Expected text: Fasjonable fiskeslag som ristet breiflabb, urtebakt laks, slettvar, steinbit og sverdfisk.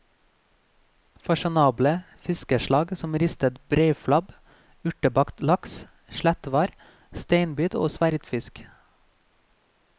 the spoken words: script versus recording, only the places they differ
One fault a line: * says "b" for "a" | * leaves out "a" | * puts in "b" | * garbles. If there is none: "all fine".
all fine